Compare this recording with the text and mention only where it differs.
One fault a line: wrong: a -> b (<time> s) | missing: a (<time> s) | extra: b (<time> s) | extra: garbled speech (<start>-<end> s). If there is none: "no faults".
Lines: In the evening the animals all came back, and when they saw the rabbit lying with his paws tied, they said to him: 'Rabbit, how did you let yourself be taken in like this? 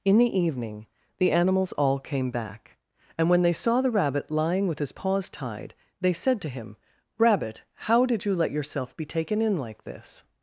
no faults